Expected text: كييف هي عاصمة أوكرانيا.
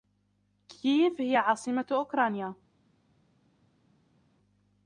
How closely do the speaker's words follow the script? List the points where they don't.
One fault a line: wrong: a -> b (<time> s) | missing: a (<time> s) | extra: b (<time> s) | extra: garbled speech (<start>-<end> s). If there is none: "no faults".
no faults